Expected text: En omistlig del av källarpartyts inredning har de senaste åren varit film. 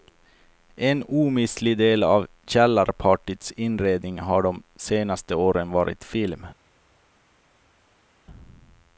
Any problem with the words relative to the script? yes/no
no